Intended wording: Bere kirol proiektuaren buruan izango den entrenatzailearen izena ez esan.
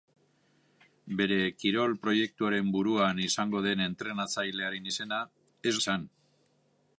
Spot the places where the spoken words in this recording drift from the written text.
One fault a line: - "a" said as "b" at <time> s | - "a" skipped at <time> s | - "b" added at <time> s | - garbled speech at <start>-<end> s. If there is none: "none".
none